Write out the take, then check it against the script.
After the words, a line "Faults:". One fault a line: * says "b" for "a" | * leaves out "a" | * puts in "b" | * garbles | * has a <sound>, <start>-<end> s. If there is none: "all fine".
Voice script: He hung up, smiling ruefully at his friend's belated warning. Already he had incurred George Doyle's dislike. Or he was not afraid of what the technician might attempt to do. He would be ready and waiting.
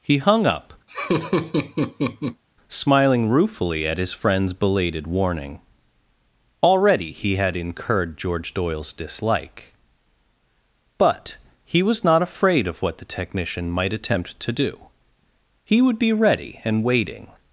He hung up, smiling ruefully at his friend's belated warning. Already he had incurred George Doyle's dislike. But he was not afraid of what the technician might attempt to do. He would be ready and waiting.
Faults:
* has a laugh, 0.9-2.4 s
* says "But" for "Or"